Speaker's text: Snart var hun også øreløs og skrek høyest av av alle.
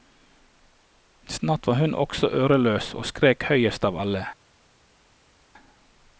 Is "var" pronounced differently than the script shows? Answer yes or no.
no